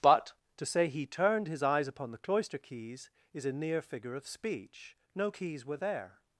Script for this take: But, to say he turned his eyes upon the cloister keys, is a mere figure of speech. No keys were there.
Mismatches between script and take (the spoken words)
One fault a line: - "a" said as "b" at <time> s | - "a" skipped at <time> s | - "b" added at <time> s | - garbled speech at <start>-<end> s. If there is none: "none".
- "mere" said as "near" at 3.5 s